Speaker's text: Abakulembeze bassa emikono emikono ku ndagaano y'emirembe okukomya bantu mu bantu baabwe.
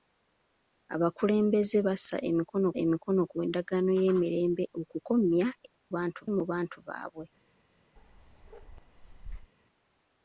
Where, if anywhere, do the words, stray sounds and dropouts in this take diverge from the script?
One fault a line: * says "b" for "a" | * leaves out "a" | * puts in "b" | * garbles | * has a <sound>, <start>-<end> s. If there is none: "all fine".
* has a bark, 8.0-9.5 s